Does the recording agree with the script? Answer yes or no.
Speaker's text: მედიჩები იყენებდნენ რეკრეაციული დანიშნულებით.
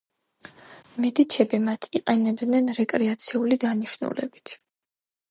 no